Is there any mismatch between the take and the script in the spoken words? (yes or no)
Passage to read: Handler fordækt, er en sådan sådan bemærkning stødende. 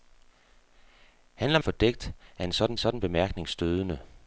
no